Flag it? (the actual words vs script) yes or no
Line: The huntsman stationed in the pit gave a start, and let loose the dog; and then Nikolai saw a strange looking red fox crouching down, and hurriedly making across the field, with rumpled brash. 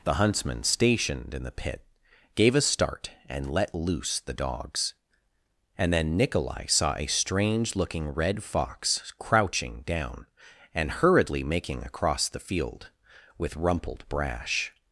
yes